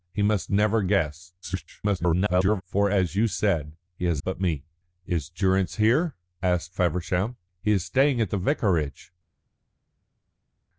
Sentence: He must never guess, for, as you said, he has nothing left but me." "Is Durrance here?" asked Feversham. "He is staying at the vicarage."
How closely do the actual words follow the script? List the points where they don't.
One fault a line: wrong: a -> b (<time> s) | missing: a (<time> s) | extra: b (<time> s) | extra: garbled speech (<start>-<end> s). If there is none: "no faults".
extra: garbled speech (1.4-2.6 s)
missing: nothing left (4.2 s)